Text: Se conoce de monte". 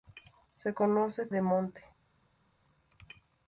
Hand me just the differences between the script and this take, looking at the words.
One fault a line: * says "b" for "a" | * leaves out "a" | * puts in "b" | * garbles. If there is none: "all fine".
all fine